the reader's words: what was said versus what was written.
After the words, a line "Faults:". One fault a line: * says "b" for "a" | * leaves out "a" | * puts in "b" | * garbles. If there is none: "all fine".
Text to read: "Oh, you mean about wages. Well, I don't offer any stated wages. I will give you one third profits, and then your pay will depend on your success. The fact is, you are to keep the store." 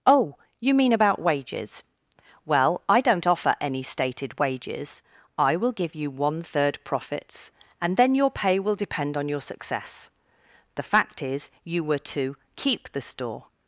"Oh, you mean about wages. Well, I don't offer any stated wages. I will give you one third profits, and then your pay will depend on your success. The fact is, you were to keep the store."
Faults:
* says "were" for "are"